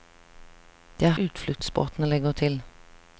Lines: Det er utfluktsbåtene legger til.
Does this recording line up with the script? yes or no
yes